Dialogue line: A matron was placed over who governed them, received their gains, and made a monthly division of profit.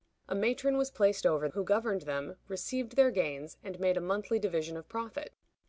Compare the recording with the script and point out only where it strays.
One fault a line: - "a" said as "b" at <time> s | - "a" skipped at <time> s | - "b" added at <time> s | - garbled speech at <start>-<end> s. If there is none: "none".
none